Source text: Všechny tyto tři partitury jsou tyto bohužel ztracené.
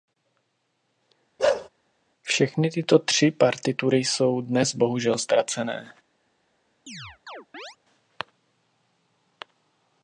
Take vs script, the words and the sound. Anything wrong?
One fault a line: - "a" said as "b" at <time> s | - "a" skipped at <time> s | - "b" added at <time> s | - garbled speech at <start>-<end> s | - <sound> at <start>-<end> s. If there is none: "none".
- bark at 1.4-1.7 s
- "tyto" said as "dnes" at 4.4 s
- chirp at 6.9-7.8 s